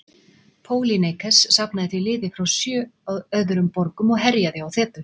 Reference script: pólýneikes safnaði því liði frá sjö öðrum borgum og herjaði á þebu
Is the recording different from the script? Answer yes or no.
no